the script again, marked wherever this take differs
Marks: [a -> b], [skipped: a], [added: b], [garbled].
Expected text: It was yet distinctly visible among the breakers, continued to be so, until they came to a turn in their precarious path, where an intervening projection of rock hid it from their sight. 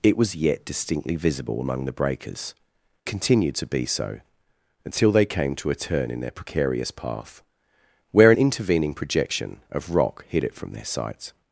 It was yet distinctly visible among the breakers, continued to be so, until they came to a turn in their precarious path, where an intervening projection of rock hid it from their sight.